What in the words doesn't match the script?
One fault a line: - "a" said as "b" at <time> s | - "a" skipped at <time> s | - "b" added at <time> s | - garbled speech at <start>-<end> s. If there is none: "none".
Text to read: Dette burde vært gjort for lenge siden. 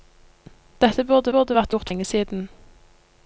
- "burde" added at 1.3 s
- "for" skipped at 1.9 s